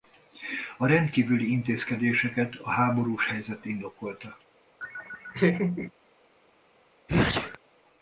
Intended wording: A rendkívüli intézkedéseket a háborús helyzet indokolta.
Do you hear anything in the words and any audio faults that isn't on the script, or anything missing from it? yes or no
yes